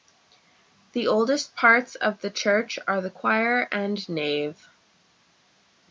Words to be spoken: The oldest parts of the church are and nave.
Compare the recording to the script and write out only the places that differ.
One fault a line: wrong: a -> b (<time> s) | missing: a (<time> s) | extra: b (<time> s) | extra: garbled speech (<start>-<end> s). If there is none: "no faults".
extra: the choir (3.0 s)